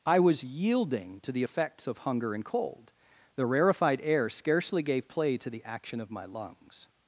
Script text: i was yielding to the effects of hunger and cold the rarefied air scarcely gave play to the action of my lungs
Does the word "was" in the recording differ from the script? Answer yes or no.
no